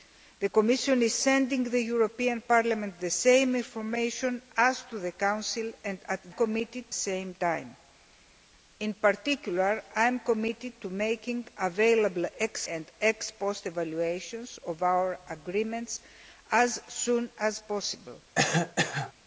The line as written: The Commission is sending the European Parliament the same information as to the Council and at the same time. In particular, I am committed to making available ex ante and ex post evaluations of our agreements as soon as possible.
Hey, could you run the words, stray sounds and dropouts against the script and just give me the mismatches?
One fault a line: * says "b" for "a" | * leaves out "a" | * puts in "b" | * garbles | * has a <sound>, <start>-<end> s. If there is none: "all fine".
* says "committed" for "the"
* leaves out "ante"
* has a cough, 18.3-19.1 s